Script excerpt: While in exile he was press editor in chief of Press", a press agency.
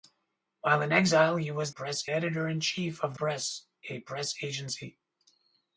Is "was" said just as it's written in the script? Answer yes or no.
yes